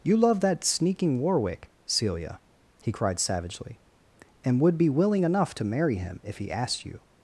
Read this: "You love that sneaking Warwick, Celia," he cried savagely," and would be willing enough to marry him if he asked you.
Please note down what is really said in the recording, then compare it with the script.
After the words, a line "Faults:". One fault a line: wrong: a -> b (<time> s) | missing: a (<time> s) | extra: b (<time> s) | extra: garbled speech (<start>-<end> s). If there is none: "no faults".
"You love that sneaking Warwick, Celia," he cried savagely," and would be willing enough to marry him if he asked you.
Faults:
no faults